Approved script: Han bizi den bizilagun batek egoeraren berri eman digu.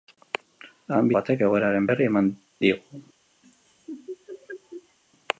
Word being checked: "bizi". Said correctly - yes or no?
no